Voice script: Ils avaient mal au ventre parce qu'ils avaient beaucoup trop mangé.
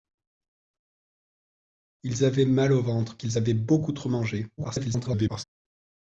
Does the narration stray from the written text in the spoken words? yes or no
yes